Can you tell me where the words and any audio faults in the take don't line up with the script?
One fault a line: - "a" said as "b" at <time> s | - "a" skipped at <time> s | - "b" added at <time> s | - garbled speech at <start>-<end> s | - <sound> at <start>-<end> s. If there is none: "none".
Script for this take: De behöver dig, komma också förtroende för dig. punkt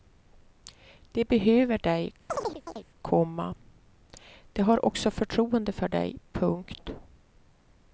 - chirp at 2.3-2.9 s
- "de har" added at 4.5 s